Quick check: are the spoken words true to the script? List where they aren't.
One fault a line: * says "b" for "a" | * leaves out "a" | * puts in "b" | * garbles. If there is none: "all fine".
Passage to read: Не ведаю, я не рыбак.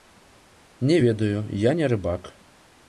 all fine